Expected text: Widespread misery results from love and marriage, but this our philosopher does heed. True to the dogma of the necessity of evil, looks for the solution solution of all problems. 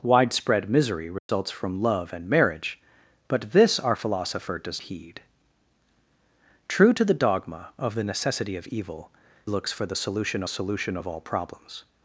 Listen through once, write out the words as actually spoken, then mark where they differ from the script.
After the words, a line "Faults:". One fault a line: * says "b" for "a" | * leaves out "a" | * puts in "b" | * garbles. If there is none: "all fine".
Widespread misery results from love and marriage, but this our philosopher does heed. True to the dogma of the necessity of evil, looks for the solution solution of all problems.
Faults:
all fine